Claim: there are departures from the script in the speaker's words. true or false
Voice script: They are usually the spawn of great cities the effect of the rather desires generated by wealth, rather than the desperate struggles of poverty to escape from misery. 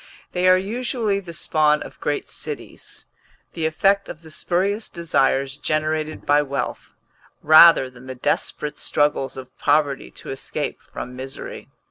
true